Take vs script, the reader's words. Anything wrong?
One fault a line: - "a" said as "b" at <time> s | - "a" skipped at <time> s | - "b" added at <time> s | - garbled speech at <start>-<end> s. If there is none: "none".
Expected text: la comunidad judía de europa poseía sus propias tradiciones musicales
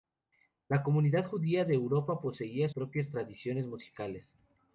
- "sus" skipped at 2.7 s